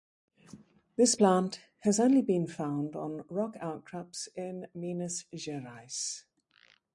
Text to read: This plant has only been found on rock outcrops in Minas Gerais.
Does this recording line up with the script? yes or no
yes